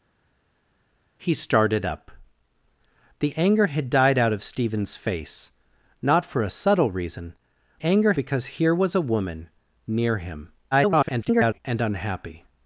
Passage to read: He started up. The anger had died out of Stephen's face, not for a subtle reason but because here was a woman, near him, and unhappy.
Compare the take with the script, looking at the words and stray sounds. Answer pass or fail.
fail